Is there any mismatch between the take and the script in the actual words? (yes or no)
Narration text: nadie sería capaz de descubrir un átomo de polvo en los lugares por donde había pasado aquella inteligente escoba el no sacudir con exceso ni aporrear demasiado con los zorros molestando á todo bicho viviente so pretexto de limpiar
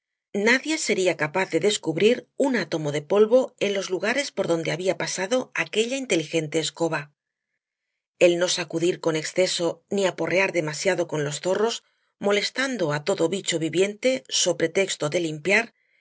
no